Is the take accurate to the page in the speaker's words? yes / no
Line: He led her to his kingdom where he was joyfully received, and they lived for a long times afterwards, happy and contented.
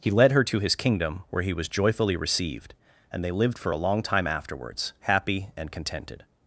no